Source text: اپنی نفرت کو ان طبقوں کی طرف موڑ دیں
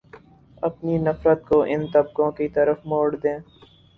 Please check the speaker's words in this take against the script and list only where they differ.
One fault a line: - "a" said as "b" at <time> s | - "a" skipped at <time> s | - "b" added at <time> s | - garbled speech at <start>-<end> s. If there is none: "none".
none